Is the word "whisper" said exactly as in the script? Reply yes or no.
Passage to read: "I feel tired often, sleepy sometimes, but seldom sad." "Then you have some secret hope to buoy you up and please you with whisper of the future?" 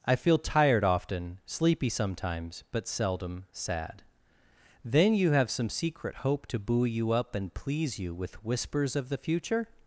no